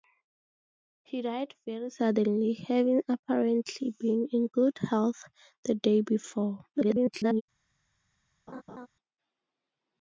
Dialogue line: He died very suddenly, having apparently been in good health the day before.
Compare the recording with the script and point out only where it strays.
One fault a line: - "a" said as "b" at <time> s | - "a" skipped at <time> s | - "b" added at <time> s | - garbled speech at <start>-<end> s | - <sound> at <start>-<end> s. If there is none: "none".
- garbled speech at 6.7-7.4 s
- laugh at 8.5-8.9 s